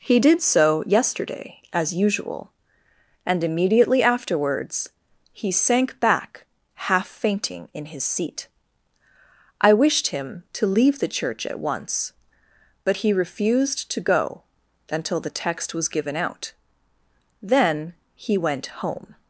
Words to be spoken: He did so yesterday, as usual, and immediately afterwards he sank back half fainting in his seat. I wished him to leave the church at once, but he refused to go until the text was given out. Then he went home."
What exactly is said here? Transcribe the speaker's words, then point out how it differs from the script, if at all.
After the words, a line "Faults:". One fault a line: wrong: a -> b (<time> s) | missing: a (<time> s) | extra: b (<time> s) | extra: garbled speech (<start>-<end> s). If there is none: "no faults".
He did so yesterday, as usual, and immediately afterwards he sank back half fainting in his seat. I wished him to leave the church at once, but he refused to go until the text was given out. Then he went home."
Faults:
no faults